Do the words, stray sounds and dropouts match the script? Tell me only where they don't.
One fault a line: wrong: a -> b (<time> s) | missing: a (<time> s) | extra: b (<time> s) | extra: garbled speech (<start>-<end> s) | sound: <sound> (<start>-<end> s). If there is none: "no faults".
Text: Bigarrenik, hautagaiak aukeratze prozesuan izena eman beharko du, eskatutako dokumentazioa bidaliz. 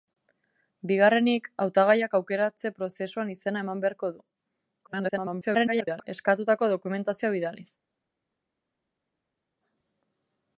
extra: garbled speech (4.8-6.1 s)